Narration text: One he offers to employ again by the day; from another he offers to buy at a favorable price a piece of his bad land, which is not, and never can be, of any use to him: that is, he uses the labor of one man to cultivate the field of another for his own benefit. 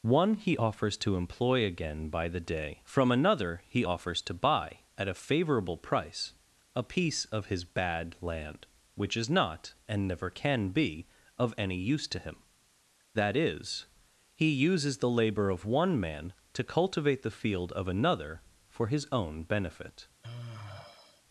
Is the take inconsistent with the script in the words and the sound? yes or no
yes